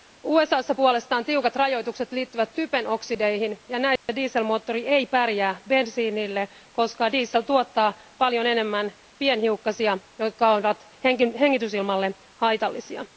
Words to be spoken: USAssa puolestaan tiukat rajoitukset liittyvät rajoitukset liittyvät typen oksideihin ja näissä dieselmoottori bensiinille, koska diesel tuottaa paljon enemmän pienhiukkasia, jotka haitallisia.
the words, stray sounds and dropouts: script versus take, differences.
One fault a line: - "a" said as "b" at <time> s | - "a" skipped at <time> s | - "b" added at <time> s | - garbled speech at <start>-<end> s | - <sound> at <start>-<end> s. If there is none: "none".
- "rajoitukset liittyvät" skipped at 2.5 s
- dropout at 4.0-4.1 s
- "ei pärjää" added at 4.9 s
- "ovat hengitysilmalle" added at 10.5 s